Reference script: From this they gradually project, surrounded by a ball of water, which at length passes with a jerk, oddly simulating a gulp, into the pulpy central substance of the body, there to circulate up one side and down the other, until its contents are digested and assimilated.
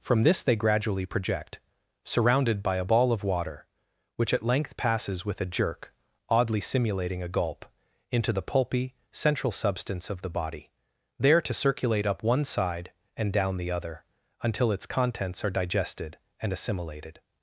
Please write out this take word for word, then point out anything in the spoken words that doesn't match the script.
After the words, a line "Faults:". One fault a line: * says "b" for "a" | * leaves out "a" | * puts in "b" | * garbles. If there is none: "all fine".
From this they gradually project, surrounded by a ball of water, which at length passes with a jerk, oddly simulating a gulp, into the pulpy central substance of the body, there to circulate up one side and down the other, until its contents are digested and assimilated.
Faults:
all fine